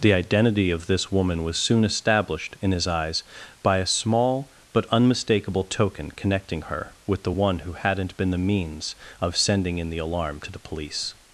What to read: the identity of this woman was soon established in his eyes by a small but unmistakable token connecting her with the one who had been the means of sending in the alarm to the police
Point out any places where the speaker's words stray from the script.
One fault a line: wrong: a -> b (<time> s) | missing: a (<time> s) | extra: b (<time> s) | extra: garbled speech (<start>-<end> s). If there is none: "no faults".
wrong: had -> hadn't (7.7 s)